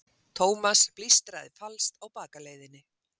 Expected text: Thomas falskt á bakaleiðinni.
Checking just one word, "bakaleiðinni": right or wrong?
right